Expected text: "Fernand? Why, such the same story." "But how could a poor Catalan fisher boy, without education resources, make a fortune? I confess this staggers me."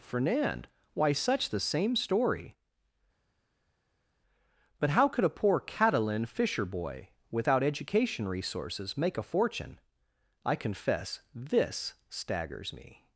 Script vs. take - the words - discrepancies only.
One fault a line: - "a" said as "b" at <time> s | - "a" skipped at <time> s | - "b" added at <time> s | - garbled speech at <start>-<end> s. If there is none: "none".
none